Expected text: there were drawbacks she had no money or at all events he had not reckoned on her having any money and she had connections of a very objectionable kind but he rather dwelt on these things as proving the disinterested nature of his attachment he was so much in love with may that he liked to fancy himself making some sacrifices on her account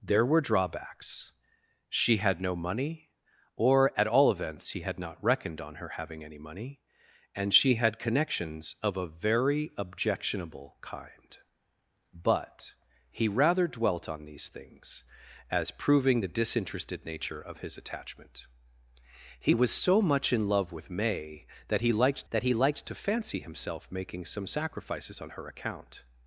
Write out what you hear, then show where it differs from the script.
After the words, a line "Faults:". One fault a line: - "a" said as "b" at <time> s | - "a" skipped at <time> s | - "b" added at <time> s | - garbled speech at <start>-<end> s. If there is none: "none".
there were drawbacks she had no money or at all events he had not reckoned on her having any money and she had connections of a very objectionable kind but he rather dwelt on these things as proving the disinterested nature of his attachment he was so much in love with may that he liked that he liked to fancy himself making some sacrifices on her account
Faults:
- "that he liked" added at 22.3 s